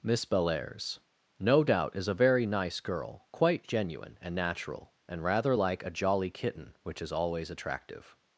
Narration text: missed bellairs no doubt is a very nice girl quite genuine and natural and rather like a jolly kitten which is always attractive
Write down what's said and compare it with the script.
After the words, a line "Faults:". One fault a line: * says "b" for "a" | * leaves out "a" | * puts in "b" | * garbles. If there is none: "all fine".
miss bellairs no doubt is a very nice girl quite genuine and natural and rather like a jolly kitten which is always attractive
Faults:
* says "miss" for "missed"